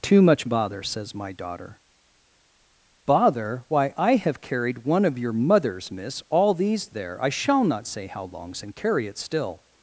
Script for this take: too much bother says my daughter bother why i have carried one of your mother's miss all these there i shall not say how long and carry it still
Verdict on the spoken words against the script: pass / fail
fail